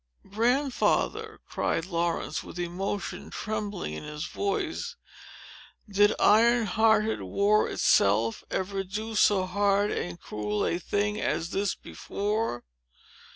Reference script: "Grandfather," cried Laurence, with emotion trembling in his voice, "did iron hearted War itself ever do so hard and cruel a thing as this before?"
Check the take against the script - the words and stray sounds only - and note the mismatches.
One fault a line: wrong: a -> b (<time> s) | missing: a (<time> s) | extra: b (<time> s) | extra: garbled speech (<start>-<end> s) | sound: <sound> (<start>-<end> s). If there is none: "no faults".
no faults